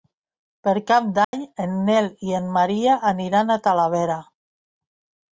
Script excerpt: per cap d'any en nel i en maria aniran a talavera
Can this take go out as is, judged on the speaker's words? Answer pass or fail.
pass